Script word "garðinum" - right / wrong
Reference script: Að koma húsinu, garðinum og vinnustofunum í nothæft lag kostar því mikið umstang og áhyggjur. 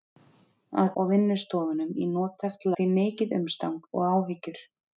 wrong